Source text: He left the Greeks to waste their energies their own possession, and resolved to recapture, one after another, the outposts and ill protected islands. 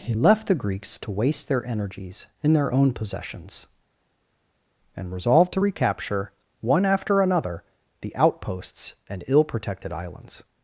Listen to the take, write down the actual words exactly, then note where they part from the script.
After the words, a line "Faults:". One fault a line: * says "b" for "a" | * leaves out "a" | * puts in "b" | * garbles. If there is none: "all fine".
He left the Greeks to waste their energies in their own possessions, and resolved to recapture, one after another, the outposts and ill protected islands.
Faults:
* puts in "in"
* says "possessions" for "possession"